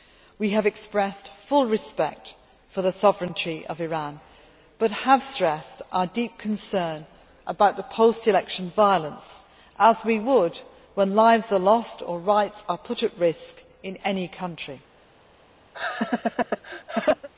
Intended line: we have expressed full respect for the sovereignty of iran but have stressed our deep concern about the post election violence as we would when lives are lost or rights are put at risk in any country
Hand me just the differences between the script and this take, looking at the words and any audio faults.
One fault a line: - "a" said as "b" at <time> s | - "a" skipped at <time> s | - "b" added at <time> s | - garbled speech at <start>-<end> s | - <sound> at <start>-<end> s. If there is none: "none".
- laugh at 15.7-17.3 s